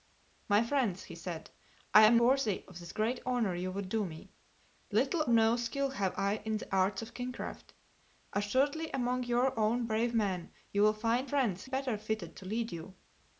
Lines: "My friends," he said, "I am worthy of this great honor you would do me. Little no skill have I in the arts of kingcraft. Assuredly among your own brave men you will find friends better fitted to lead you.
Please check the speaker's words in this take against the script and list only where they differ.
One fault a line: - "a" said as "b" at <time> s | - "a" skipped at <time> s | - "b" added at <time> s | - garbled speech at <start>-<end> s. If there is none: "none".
none